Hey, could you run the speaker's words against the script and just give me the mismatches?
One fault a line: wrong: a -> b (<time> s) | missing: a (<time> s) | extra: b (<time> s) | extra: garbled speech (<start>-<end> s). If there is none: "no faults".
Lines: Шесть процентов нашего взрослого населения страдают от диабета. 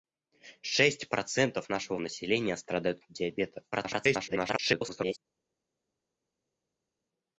missing: взрослого (2.0 s)
extra: garbled speech (3.7-5.2 s)